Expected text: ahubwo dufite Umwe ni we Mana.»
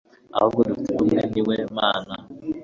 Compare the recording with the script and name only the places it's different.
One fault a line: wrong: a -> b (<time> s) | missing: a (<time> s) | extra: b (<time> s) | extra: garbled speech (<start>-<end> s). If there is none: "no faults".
no faults